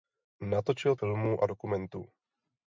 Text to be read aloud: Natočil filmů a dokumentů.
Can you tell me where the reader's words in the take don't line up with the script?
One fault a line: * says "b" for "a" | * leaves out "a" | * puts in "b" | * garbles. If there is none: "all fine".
all fine